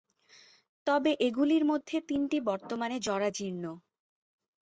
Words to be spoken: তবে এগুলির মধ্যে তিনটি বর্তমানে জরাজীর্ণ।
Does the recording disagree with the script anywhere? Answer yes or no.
no